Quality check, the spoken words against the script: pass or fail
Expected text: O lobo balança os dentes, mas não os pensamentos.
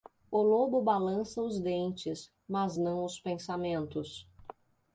pass